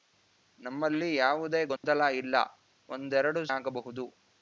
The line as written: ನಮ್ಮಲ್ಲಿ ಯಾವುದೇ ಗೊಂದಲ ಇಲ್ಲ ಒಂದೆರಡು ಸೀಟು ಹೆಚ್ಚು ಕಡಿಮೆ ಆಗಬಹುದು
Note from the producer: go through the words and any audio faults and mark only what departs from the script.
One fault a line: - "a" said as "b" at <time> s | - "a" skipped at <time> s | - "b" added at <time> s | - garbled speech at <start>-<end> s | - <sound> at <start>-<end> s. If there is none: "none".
- dropout at 1.8-1.8 s
- "ಸೀಟು ಹೆಚ್ಚು ಕಡಿಮೆ" skipped at 3.4 s